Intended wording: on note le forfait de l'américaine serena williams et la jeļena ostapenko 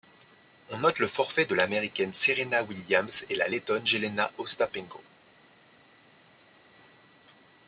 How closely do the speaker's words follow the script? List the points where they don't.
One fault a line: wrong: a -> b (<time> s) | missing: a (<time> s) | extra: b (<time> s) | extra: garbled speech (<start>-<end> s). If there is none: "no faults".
extra: lettonne (3.5 s)